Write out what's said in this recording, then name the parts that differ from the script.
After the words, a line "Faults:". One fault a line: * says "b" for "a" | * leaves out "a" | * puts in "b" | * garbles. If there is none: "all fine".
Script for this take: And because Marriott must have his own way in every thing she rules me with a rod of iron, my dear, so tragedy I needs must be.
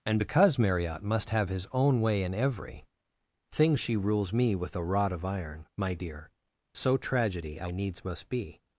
And because Marriott must have his own way in every thing she rules me with a rod of iron, my dear, so tragedy I needs must be.
Faults:
all fine